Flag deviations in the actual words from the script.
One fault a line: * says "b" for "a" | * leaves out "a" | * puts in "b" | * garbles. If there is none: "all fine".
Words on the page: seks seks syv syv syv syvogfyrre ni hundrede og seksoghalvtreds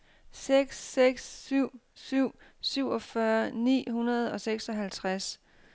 * leaves out "syv"